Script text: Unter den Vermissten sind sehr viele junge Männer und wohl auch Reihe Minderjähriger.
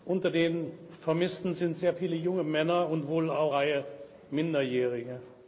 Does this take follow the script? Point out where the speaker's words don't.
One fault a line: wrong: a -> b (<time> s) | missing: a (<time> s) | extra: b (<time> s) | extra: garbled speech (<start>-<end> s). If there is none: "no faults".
no faults